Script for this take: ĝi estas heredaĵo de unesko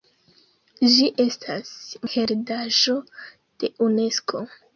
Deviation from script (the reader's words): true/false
false